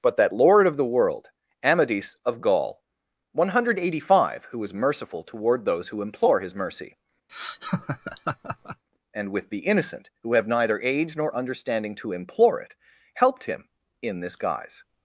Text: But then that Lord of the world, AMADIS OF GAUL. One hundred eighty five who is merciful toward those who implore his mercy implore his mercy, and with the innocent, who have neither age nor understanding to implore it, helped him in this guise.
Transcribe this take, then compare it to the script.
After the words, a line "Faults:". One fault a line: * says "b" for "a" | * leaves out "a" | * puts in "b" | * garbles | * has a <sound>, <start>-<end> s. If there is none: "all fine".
But that Lord of the world, AMADIS OF GAUL. One hundred eighty five who is merciful toward those who implore his mercy, and with the innocent, who have neither age nor understanding to implore it, helped him in this guise.
Faults:
* leaves out "then"
* leaves out "implore his mercy"
* has a laugh, 7.3-8.8 s